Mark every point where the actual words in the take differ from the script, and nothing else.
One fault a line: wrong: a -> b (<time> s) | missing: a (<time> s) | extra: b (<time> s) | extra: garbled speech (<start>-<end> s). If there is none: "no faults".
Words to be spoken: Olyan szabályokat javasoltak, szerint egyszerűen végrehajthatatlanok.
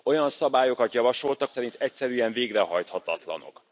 no faults